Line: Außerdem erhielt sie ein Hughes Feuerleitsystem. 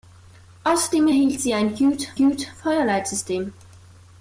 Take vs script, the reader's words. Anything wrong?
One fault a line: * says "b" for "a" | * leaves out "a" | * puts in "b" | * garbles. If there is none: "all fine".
* puts in "Hughes"